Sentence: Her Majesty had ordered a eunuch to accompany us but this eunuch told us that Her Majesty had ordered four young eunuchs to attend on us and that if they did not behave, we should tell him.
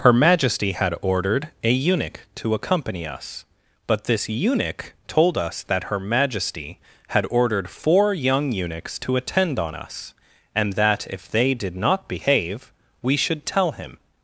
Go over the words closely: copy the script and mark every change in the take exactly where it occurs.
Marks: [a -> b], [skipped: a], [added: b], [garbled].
Her Majesty had ordered a eunuch to accompany us but this eunuch told us that Her Majesty had ordered four young eunuchs to attend on us and that if they did not behave, we should tell him.